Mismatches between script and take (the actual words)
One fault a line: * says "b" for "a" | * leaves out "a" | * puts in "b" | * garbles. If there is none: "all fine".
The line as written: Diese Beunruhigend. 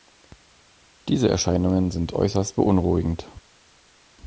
* puts in "Erscheinungen sind äußerst"